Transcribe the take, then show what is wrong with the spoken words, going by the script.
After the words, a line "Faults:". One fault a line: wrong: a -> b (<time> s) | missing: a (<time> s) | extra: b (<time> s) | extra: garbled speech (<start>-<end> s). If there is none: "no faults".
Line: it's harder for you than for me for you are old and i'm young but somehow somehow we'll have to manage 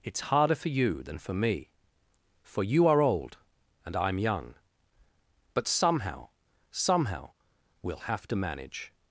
it's harder for you than for me for you are old and i'm young but somehow somehow we'll have to manage
Faults:
no faults